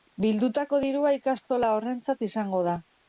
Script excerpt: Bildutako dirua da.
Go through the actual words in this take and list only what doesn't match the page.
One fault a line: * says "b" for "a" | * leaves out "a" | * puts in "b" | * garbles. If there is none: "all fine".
* puts in "ikastola horrentzat izango"